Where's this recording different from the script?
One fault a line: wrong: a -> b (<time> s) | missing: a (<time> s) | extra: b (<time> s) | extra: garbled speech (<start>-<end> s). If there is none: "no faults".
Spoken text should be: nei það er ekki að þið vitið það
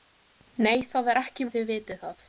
no faults